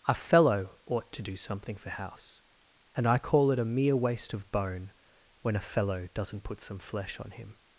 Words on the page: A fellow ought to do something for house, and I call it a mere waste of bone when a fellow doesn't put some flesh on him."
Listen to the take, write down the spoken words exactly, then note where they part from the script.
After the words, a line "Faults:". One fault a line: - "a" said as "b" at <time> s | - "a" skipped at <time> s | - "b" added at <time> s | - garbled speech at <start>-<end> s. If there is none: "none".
A fellow ought to do something for house, and I call it a mere waste of bone when a fellow doesn't put some flesh on him."
Faults:
none